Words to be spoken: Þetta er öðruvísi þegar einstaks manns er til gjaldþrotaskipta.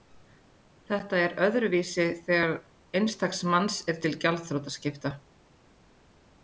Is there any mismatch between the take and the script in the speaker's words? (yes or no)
no